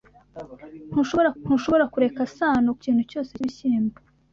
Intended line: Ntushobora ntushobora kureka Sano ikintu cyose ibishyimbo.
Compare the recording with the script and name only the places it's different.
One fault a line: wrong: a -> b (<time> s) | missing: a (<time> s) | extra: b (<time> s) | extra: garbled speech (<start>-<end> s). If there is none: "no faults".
no faults